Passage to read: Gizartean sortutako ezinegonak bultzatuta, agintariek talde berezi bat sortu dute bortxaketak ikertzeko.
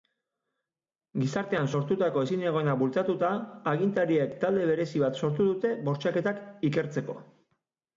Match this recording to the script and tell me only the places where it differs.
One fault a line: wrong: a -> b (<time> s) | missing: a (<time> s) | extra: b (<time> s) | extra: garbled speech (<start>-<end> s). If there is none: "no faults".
no faults